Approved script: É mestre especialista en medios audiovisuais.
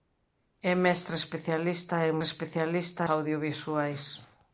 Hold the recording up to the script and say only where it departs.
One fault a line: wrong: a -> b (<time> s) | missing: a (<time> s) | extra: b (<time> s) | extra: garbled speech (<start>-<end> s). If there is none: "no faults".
wrong: medios -> especialista (2.2 s)